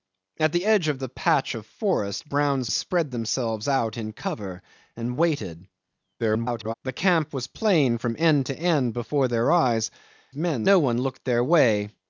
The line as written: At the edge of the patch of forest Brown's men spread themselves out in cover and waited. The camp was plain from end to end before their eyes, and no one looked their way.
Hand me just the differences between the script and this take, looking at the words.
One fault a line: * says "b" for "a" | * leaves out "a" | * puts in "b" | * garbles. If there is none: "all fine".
* leaves out "men"
* garbles
* says "men" for "and"